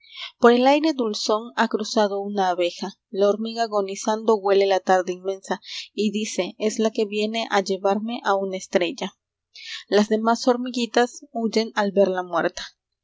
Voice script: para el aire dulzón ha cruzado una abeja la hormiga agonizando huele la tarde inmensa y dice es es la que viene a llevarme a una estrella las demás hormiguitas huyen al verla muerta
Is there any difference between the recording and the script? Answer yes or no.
yes